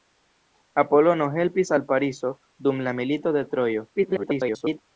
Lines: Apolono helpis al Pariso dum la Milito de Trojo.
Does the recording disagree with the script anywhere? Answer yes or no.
yes